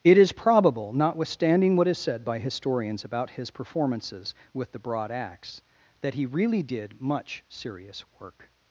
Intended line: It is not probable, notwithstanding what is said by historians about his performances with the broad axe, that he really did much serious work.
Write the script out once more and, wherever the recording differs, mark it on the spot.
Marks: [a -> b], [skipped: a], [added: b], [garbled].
It is [skipped: not] probable, notwithstanding what is said by historians about his performances with the broad axe, that he really did much serious work.